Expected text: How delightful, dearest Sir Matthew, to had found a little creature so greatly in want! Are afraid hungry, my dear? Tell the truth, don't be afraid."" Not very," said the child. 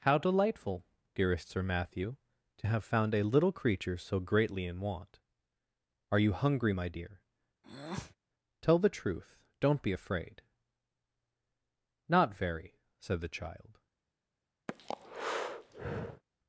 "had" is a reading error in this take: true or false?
true